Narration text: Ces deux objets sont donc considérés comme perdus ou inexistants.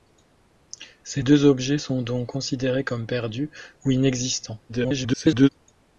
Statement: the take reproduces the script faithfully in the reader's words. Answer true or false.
false